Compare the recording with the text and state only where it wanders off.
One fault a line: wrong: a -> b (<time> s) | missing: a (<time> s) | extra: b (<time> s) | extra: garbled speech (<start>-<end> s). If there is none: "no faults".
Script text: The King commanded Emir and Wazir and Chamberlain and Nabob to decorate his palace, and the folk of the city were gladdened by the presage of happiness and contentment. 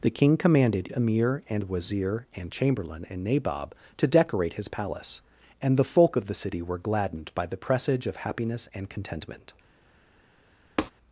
no faults